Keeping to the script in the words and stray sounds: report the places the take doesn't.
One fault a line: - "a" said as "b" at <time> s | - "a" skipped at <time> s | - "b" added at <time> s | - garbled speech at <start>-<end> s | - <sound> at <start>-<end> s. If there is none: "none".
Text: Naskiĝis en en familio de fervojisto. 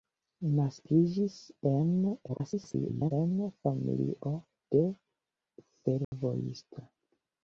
- garbled speech at 2.3-3.1 s
- dropout at 6.0-6.1 s